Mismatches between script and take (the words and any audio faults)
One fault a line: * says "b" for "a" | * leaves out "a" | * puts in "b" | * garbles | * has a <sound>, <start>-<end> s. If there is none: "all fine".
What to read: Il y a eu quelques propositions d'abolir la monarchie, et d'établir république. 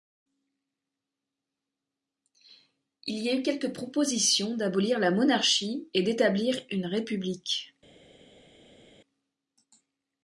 * puts in "une"